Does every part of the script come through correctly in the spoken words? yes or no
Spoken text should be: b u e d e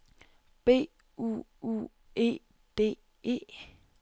no